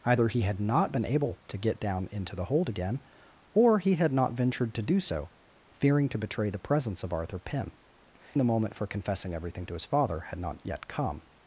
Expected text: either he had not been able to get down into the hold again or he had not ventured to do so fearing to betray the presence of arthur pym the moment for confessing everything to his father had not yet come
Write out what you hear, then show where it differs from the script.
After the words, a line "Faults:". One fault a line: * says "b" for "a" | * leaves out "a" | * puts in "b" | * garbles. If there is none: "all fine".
either he had not been able to get down into the hold again or he had not ventured to do so fearing to betray the presence of arthur pym the moment for confessing everything to his father had not yet come
Faults:
all fine